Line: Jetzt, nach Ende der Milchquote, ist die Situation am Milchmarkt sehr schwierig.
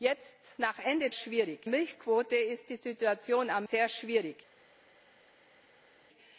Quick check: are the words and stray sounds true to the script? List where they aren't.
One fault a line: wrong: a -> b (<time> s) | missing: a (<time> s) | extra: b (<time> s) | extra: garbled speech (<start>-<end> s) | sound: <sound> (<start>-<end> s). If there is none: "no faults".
wrong: der -> schwierig (1.1 s)
missing: Milchmarkt (3.7 s)